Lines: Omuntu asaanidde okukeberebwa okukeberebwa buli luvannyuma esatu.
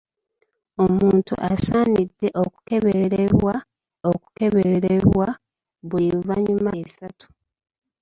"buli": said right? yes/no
yes